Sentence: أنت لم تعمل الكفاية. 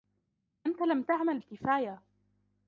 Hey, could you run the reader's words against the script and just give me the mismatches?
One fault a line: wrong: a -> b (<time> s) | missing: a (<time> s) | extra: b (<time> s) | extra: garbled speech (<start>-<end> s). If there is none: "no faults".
no faults